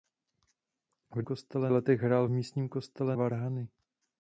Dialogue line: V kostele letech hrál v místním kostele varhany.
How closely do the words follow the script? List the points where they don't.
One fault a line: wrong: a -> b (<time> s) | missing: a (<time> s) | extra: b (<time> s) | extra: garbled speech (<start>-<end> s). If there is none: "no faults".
no faults